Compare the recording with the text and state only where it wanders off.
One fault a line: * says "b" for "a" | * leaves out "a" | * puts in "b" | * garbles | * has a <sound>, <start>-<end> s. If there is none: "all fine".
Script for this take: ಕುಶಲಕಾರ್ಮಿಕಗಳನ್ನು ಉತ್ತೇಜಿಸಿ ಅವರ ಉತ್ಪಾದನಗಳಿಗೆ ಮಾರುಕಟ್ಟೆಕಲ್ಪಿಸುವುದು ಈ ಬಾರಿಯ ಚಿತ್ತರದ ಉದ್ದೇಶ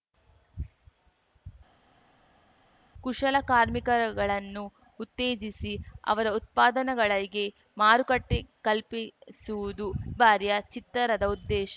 * leaves out "ಈ"